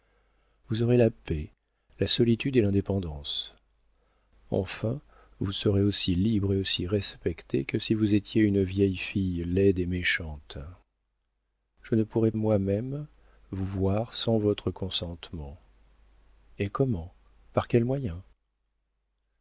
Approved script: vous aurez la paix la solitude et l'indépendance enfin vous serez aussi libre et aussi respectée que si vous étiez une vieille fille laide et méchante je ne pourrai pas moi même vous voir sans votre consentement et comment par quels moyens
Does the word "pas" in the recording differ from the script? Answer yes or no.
yes